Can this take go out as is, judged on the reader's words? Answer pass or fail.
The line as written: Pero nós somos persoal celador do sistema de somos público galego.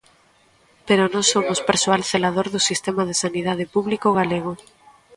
fail